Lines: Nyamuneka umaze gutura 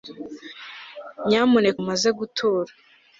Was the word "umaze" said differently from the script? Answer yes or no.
no